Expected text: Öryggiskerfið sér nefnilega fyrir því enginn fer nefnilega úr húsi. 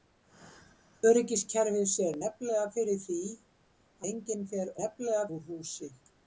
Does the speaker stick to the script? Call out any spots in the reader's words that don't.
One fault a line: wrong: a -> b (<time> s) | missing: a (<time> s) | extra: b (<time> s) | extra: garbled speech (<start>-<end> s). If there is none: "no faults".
no faults